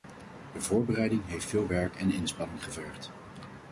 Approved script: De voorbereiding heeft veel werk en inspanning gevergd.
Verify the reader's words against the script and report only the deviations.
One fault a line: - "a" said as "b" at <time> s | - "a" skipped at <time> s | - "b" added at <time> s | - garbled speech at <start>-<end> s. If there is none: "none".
none